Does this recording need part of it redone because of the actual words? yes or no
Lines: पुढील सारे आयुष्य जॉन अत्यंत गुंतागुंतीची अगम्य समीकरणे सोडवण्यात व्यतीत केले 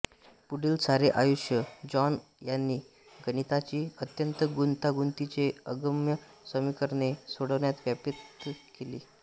yes